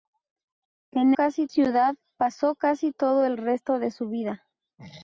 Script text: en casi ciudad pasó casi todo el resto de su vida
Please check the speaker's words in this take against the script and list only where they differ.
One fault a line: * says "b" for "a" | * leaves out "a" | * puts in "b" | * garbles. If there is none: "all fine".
all fine